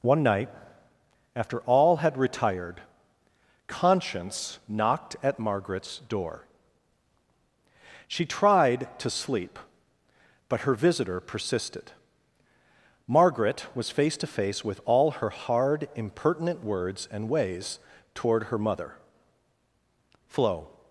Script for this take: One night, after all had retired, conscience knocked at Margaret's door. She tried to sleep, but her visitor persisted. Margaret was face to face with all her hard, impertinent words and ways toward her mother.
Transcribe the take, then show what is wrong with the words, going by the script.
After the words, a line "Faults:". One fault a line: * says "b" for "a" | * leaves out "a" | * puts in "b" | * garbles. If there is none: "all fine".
One night, after all had retired, conscience knocked at Margaret's door. She tried to sleep, but her visitor persisted. Margaret was face to face with all her hard, impertinent words and ways toward her mother. "Flo
Faults:
* puts in "Flo"